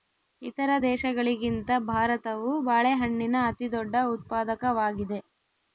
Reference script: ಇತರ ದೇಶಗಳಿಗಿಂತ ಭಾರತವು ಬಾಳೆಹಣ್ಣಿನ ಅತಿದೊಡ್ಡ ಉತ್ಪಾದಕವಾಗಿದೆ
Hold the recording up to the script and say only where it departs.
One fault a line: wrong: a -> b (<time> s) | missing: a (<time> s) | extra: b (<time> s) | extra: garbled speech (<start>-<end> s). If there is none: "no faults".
no faults